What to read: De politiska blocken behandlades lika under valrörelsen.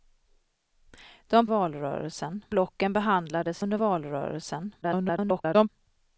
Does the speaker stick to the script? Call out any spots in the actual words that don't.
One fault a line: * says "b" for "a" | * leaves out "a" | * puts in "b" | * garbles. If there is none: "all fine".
* says "valrörelsen" for "politiska"
* leaves out "lika"
* garbles